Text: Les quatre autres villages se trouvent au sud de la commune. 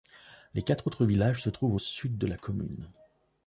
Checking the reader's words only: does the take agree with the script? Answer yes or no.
yes